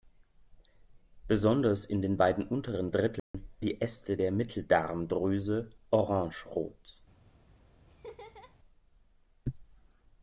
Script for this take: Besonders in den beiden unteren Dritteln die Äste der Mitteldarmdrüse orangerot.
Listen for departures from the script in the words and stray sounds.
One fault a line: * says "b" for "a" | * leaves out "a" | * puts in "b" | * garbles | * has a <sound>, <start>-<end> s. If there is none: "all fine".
* has a dropout, 3.2-3.3 s
* has a laugh, 7.9-8.6 s